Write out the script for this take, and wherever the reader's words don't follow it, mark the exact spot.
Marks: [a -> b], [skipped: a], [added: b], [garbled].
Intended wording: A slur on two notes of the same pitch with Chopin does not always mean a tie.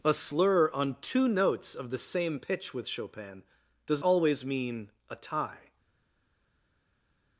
A slur on two notes of the same pitch with Chopin does [skipped: not] always mean a tie.